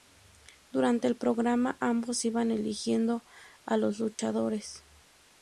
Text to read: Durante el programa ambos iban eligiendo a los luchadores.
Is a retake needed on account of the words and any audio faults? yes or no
yes